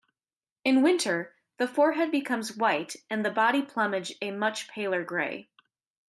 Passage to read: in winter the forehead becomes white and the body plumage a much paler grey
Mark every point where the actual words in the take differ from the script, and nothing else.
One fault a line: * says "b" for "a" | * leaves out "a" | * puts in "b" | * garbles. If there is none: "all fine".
all fine